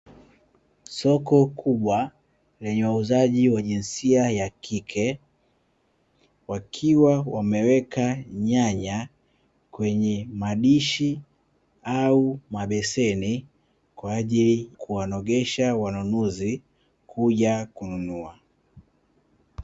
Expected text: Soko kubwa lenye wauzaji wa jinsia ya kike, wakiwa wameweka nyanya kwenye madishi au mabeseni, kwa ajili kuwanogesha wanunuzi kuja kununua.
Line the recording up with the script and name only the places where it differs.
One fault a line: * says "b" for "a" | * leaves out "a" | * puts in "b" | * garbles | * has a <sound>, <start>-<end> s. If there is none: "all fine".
all fine